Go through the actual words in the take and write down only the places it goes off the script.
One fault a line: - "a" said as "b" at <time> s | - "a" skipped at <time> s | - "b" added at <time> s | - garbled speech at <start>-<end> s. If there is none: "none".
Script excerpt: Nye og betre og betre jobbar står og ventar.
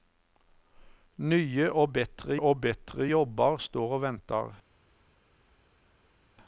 none